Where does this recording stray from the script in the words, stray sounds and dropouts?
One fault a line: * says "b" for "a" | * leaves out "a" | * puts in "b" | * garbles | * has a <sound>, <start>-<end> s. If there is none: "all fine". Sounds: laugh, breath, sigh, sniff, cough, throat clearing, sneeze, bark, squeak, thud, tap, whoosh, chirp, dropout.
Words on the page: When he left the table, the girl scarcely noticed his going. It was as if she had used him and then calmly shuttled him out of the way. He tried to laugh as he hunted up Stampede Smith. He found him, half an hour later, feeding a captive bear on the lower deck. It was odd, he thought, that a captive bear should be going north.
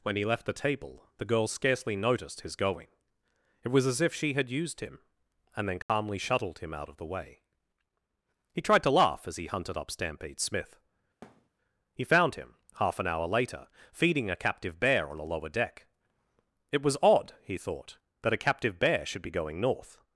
* has a dropout, 5.8-5.9 s
* has a thud, 11.2-11.5 s
* says "a" for "the"